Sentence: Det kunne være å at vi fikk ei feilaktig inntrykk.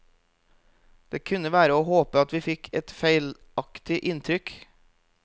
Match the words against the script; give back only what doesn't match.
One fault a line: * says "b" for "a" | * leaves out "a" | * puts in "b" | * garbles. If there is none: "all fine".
* puts in "håpe"
* says "et" for "ei"